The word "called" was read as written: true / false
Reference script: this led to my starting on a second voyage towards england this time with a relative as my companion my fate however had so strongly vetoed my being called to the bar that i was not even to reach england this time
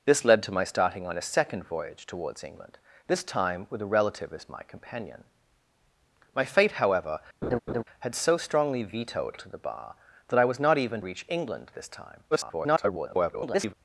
false